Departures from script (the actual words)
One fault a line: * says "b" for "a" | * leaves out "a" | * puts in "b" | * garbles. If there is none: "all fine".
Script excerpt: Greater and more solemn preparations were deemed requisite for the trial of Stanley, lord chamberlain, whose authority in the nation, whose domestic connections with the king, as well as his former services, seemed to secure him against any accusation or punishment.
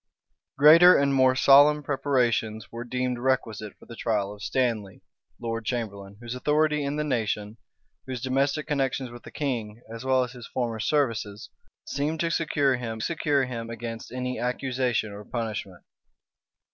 * puts in "secure him"